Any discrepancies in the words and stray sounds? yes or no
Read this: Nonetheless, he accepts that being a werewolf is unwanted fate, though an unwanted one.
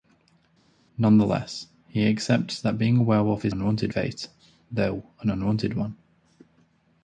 no